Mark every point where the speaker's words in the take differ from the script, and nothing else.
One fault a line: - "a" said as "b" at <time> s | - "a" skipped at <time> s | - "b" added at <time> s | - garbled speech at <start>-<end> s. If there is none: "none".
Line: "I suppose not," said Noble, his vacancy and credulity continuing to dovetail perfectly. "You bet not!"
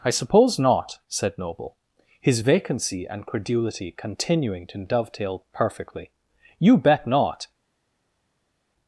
none